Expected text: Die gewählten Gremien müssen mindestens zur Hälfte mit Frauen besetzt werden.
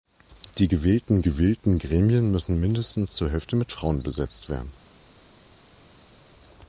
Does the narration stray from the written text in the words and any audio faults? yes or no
yes